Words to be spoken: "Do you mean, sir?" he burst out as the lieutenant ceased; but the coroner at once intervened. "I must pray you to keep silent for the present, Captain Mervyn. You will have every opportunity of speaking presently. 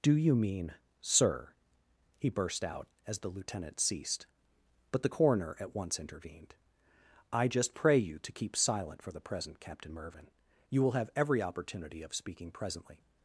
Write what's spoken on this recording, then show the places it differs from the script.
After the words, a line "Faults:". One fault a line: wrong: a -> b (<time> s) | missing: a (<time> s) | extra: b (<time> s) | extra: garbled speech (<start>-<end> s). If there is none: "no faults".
"Do you mean, sir?" he burst out as the lieutenant ceased; but the coroner at once intervened. "I just pray you to keep silent for the present, Captain Mervyn. You will have every opportunity of speaking presently.
Faults:
wrong: must -> just (7.5 s)